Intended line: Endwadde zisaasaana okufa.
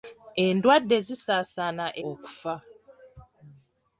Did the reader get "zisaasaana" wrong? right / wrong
right